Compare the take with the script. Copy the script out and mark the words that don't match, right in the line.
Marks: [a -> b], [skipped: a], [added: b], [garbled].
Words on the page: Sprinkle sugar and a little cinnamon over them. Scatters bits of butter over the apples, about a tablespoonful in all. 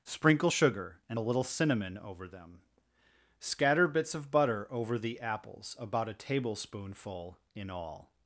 Sprinkle sugar and a little cinnamon over them. [Scatters -> Scatter] bits of butter over the apples, about a tablespoonful in all.